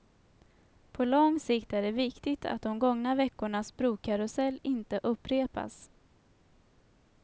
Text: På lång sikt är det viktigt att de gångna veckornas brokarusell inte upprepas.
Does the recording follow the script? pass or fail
pass